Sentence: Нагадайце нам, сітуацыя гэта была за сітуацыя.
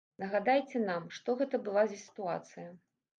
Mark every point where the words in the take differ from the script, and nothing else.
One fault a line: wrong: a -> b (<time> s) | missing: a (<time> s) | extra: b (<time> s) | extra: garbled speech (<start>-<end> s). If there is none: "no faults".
wrong: сітуацыя -> што (1.2 s)